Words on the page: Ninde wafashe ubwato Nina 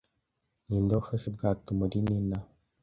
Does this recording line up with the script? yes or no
no